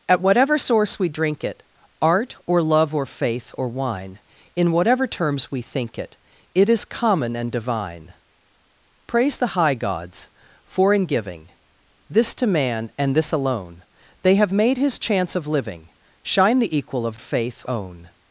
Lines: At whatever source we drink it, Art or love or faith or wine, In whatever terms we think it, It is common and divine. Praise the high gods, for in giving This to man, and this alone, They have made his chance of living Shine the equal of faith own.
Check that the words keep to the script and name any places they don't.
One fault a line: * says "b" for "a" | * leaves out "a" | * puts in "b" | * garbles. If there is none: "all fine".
all fine